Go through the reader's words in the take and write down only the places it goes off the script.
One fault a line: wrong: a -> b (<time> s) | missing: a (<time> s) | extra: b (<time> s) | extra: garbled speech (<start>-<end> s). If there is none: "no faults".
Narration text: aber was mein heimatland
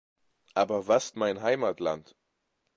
no faults